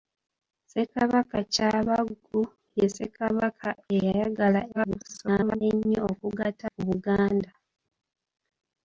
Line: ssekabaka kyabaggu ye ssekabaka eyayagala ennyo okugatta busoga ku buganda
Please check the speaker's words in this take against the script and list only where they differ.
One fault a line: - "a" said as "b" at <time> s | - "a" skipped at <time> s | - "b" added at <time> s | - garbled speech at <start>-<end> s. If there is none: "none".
- garbled speech at 4.7-5.6 s
- "busoga" skipped at 6.7 s